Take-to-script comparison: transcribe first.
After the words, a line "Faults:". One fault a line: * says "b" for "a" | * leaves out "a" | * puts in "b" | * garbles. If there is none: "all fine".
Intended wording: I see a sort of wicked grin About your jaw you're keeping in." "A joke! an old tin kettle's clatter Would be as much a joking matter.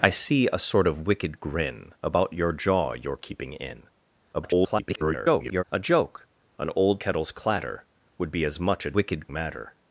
I see a sort of wicked grin About your jaw you're keeping in." [garbled] "A joke! an old kettle's clatter Would be as much a wicked matter.
Faults:
* garbles
* leaves out "tin"
* says "wicked" for "joking"